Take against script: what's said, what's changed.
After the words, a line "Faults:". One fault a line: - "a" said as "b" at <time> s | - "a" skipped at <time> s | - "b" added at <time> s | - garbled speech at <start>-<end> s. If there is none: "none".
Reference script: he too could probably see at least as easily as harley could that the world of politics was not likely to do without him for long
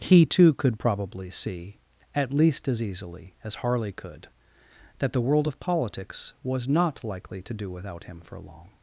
he too could probably see at least as easily as harley could that the world of politics was not likely to do without him for long
Faults:
none